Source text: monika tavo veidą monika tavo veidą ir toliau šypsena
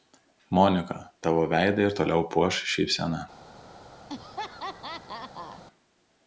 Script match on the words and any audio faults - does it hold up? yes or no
no